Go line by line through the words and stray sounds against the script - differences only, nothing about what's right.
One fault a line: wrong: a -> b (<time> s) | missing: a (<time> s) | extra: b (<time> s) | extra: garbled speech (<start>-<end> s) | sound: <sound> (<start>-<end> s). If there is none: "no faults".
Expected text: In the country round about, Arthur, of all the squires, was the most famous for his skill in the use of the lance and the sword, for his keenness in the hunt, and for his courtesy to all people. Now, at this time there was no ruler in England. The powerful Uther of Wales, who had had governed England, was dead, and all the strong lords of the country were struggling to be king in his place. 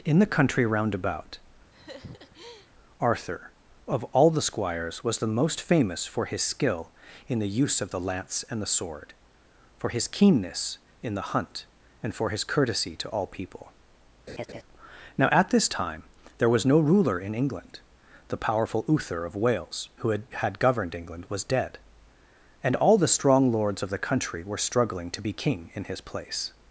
sound: laugh (1.7-2.7 s)
sound: laugh (14.3-14.6 s)